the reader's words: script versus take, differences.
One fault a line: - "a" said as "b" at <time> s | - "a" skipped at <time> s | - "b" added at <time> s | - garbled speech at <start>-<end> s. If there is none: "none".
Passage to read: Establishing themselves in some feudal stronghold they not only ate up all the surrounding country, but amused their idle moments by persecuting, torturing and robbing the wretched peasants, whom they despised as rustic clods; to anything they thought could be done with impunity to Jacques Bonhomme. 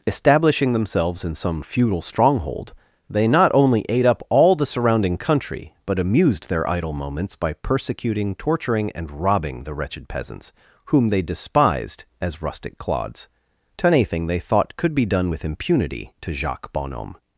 none